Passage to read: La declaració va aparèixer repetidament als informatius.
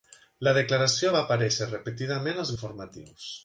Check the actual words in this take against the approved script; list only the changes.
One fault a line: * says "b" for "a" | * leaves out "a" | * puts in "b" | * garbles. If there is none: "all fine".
all fine